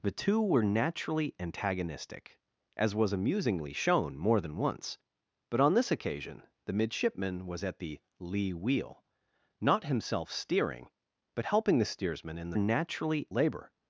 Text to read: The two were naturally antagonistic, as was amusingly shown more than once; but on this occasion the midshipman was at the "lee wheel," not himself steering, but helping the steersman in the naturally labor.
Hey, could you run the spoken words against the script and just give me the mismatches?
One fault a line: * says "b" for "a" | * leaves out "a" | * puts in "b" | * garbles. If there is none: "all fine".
all fine